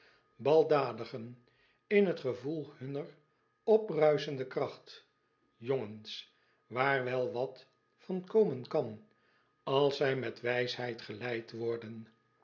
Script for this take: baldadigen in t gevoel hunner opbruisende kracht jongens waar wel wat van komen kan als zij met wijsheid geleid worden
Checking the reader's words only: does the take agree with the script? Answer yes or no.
yes